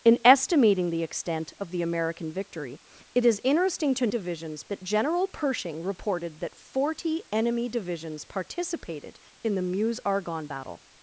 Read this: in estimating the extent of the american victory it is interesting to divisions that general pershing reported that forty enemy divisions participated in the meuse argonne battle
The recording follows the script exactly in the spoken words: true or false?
true